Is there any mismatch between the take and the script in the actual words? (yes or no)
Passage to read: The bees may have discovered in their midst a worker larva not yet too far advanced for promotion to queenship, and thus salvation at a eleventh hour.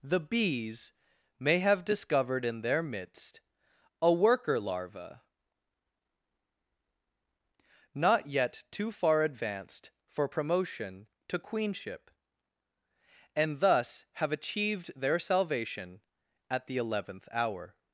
yes